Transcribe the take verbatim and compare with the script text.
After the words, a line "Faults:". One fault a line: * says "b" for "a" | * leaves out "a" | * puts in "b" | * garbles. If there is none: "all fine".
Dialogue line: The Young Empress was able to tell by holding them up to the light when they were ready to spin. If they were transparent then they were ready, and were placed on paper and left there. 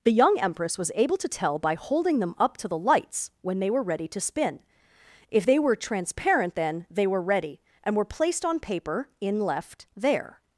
The Young Empress was able to tell by holding them up to the lights when they were ready to spin. If they were transparent then they were ready, and were placed on paper in left there.
Faults:
* says "lights" for "light"
* says "in" for "and"